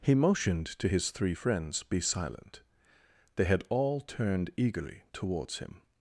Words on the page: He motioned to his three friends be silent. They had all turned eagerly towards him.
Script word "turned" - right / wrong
right